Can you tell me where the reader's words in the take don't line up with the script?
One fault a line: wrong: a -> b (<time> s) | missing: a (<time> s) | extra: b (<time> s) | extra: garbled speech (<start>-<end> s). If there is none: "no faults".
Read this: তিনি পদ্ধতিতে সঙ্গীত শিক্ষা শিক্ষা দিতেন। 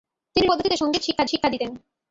no faults